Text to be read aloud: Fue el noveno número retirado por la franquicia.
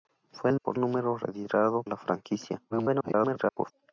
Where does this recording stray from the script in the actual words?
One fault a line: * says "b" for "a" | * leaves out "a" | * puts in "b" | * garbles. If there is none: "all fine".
* says "por" for "noveno"
* leaves out "por"
* garbles